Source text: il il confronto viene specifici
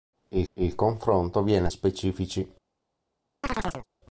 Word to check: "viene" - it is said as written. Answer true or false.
true